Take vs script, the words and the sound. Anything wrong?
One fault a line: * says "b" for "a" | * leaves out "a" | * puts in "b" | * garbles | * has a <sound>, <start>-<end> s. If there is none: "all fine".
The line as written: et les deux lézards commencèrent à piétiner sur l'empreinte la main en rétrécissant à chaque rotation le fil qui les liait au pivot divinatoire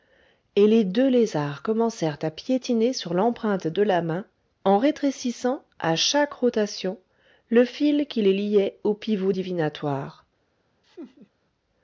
* puts in "de"
* has a laugh, 10.8-11.3 s